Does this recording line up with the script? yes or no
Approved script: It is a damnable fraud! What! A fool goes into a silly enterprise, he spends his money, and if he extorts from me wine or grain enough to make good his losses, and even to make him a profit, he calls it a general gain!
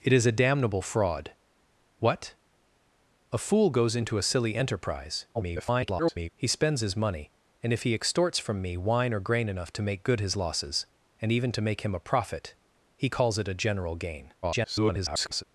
no